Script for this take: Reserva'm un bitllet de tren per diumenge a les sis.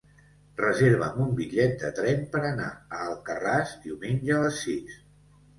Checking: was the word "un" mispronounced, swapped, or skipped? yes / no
no